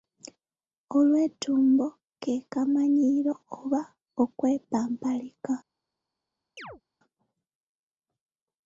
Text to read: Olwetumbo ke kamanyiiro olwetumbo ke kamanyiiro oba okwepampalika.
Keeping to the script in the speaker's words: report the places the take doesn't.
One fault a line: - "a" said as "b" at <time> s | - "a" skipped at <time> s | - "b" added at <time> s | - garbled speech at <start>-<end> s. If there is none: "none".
- "olwetumbo ke kamanyiiro" skipped at 3.3 s